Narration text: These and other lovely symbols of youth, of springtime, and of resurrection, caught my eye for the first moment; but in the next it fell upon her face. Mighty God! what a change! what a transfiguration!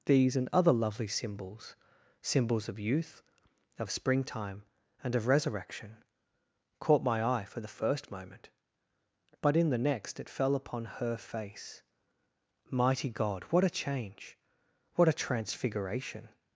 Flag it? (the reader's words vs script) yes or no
yes